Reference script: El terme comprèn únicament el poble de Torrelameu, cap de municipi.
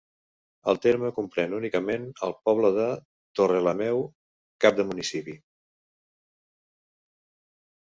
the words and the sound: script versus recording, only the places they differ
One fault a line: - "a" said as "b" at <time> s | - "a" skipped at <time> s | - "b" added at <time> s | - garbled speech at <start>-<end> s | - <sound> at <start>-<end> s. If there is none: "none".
none